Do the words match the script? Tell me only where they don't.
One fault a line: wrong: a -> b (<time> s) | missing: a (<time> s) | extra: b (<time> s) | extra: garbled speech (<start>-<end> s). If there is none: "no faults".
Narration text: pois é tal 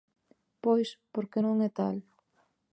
extra: porque non (1.1 s)